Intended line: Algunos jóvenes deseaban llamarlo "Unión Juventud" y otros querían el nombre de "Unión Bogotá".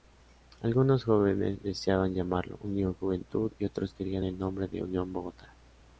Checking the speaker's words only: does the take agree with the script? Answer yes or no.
yes